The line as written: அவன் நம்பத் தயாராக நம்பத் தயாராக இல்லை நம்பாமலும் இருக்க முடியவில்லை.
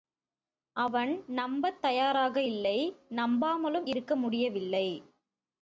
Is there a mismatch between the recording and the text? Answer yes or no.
yes